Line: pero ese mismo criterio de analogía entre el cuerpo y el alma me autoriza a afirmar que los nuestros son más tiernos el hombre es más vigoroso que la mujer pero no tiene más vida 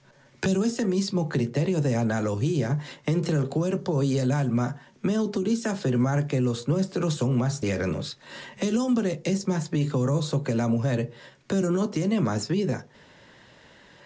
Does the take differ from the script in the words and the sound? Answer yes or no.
no